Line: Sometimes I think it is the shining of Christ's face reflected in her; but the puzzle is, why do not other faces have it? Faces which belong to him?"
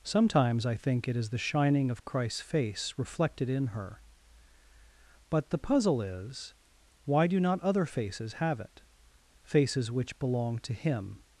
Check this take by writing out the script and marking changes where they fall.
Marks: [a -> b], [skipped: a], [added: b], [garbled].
Sometimes I think it is the shining of Christ's face reflected in her; but the puzzle is, why do not other faces have it? Faces which belong to him?"